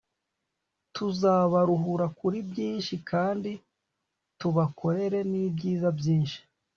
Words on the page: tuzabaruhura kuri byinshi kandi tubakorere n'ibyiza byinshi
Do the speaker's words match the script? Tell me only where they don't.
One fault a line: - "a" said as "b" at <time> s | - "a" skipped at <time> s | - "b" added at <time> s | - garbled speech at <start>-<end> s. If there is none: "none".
none